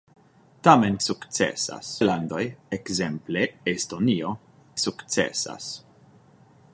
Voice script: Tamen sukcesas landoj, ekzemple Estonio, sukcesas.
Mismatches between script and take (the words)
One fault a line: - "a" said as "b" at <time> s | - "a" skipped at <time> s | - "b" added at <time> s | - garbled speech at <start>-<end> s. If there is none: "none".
none